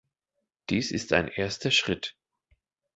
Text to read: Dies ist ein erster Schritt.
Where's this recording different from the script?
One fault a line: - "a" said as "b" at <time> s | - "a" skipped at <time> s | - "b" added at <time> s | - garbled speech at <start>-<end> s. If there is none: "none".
none